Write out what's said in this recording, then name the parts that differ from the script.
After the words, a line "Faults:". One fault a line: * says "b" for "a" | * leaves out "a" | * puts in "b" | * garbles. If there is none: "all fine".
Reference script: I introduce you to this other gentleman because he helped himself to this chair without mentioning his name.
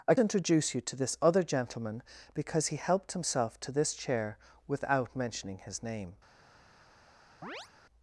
I introduce you to this other gentleman because he helped himself to this chair without mentioning his name.
Faults:
all fine